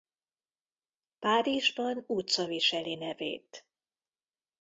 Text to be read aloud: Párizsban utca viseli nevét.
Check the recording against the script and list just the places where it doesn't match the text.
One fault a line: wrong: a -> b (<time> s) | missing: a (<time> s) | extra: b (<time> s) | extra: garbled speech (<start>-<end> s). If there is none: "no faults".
no faults